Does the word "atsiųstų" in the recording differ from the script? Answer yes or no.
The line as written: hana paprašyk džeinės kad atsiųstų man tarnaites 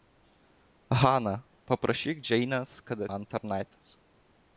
yes